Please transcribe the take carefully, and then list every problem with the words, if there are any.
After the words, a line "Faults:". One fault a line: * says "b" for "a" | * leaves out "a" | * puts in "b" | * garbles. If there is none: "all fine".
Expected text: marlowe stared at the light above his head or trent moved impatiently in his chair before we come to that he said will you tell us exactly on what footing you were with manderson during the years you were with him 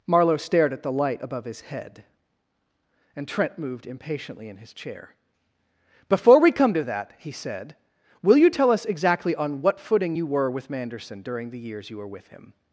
marlowe stared at the light above his head and trent moved impatiently in his chair before we come to that he said will you tell us exactly on what footing you were with manderson during the years you were with him
Faults:
* says "and" for "or"